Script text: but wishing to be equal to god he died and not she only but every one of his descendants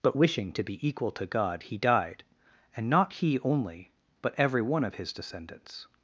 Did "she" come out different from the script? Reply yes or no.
yes